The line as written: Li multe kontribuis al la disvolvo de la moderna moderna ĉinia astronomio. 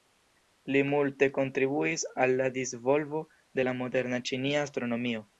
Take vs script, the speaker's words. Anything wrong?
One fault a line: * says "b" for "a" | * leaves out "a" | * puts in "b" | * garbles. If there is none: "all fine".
* leaves out "moderna"